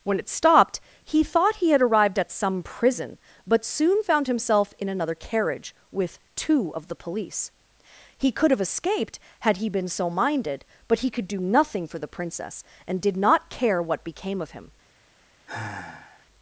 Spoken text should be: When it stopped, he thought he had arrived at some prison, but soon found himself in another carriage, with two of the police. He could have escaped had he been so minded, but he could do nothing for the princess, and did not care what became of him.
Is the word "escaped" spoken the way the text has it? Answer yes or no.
yes